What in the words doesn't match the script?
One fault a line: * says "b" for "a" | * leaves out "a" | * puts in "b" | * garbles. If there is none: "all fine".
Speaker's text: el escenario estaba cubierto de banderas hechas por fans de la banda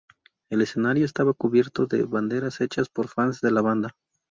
all fine